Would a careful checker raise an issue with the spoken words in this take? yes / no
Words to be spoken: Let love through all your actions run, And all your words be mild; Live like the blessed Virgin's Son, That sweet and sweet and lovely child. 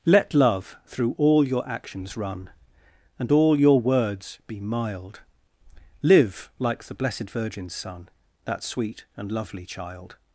yes